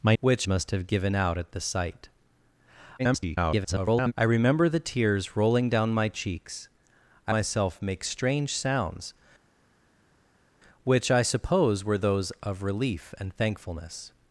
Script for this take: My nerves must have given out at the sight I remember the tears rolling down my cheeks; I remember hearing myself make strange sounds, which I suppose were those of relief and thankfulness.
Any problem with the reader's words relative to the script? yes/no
yes